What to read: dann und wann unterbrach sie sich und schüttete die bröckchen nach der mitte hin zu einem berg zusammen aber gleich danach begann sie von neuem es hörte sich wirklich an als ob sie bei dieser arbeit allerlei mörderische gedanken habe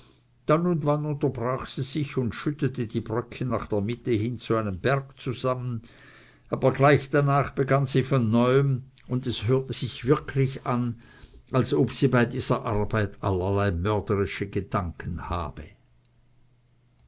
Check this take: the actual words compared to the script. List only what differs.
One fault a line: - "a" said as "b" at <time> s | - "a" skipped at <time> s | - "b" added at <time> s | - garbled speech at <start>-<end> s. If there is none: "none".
- "und" added at 9.1 s